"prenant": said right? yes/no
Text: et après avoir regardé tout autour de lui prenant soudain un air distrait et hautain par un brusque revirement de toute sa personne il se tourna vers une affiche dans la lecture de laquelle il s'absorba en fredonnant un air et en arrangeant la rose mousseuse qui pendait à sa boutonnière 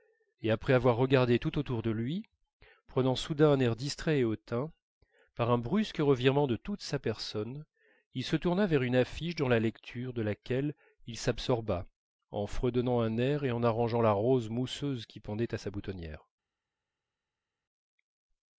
yes